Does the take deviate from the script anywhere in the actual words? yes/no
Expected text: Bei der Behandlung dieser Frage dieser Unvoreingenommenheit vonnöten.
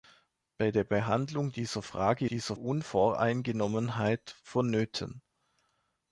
no